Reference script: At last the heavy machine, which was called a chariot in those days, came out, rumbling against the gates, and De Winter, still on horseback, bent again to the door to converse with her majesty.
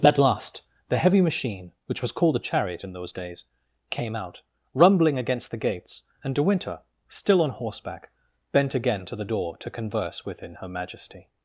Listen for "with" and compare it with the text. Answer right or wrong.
wrong